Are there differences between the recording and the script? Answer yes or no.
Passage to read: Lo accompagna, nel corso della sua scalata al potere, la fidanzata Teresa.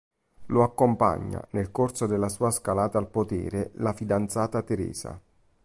no